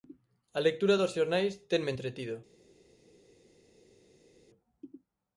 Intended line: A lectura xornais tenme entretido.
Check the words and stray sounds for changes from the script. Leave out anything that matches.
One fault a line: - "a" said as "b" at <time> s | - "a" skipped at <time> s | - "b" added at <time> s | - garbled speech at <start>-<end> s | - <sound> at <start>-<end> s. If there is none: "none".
- "dos" added at 1.0 s